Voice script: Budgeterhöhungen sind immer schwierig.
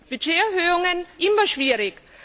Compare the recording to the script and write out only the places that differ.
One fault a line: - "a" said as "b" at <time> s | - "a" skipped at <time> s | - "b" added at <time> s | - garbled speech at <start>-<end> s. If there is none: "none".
- "sind" skipped at 1.1 s